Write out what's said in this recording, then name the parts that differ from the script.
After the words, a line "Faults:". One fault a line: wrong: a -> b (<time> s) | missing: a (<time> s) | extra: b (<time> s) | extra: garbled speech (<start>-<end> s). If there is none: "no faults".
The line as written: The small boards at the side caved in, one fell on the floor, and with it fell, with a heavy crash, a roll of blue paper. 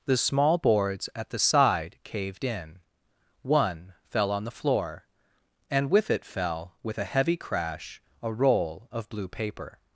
The small boards at the side caved in, one fell on the floor, and with it fell, with a heavy crash, a roll of blue paper.
Faults:
no faults